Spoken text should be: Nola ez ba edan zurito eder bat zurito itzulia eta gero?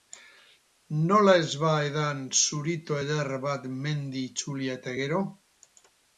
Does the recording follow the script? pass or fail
fail